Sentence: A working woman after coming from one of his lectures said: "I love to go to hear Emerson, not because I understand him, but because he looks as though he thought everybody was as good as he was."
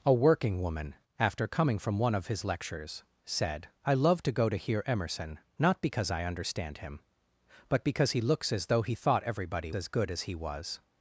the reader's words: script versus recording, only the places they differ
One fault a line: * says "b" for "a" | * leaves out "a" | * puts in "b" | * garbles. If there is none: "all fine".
* leaves out "was"